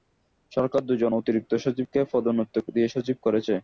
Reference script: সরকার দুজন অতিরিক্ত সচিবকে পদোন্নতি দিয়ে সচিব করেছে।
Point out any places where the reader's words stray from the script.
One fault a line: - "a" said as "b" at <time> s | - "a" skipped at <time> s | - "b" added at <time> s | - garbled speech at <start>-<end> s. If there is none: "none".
none